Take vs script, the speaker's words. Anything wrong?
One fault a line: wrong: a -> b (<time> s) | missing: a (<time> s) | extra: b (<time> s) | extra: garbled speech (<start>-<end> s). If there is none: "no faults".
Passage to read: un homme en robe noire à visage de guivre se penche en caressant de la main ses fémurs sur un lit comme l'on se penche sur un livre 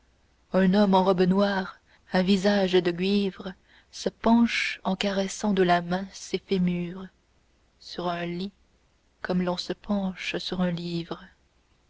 no faults